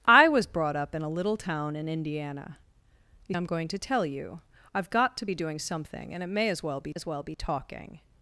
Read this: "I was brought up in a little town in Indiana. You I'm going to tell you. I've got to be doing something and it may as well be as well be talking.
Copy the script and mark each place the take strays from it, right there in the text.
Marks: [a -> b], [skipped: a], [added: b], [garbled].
"I was brought up in a little town in Indiana. You I'm going to tell you. I've got to be doing something and it may as well be as well be talking.